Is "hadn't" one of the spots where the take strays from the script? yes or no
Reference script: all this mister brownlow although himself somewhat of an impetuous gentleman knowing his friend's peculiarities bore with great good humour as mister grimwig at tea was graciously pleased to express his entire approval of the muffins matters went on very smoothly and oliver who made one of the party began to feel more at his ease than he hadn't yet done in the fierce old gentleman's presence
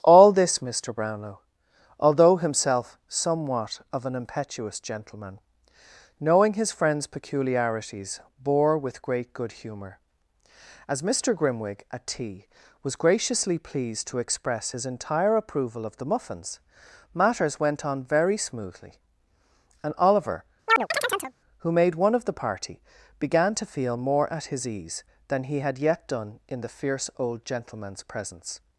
yes